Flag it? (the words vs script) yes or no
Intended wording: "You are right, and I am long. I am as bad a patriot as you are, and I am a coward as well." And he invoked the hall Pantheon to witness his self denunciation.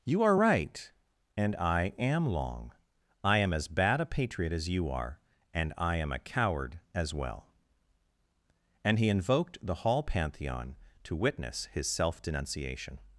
no